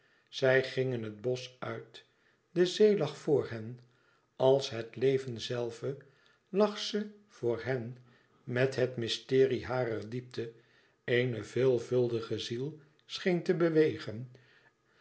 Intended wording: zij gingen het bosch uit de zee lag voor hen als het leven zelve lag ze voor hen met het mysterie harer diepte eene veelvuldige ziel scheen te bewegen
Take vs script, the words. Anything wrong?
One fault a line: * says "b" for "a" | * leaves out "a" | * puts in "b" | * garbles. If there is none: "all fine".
all fine